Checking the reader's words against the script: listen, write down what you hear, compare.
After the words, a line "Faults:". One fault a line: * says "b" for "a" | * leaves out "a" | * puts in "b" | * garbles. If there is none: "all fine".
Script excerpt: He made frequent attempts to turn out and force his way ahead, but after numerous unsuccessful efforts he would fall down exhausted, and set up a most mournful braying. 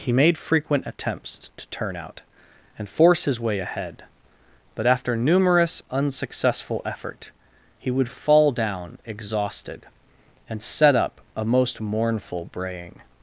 He made frequent attempts to turn out and force his way ahead, but after numerous unsuccessful effort he would fall down exhausted, and set up a most mournful braying.
Faults:
* says "effort" for "efforts"